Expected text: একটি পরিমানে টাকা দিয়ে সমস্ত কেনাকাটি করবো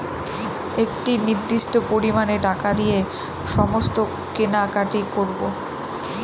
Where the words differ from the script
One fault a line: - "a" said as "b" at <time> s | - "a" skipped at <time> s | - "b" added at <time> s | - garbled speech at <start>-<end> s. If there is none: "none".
- "নির্দিষ্ট" added at 1.2 s